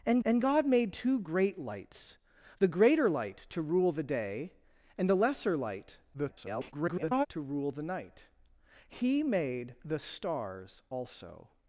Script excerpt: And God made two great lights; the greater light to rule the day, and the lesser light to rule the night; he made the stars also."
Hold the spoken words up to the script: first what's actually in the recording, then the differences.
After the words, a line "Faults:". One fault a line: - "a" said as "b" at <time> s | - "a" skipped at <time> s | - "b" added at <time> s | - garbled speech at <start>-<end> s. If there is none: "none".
And and God made two great lights; the greater light to rule the day, and the lesser light [garbled] to rule the night; he made the stars also."
Faults:
- "and" added at 0.2 s
- garbled speech at 6.1-7.3 s